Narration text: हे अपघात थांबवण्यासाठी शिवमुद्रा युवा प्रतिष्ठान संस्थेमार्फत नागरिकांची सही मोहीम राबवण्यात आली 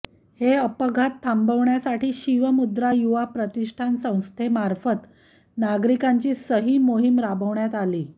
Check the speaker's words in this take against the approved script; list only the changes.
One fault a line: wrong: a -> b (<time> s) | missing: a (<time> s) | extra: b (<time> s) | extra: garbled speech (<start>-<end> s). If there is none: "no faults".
no faults